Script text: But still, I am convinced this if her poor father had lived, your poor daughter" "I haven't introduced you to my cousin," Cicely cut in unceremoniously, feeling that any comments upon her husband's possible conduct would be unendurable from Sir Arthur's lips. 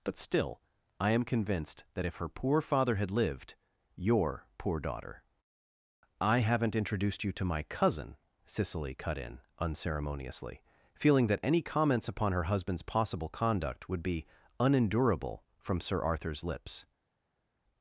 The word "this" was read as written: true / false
false